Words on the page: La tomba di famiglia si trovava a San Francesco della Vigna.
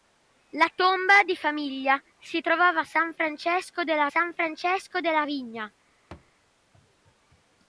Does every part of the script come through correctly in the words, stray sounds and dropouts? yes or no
no